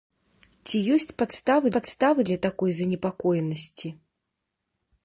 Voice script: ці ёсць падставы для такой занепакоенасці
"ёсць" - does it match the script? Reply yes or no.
yes